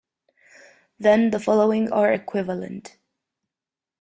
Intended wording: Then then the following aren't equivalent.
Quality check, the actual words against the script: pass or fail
fail